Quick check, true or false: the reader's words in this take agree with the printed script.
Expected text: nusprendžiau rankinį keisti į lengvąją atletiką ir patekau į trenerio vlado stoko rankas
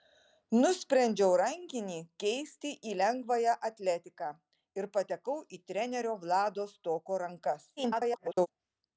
false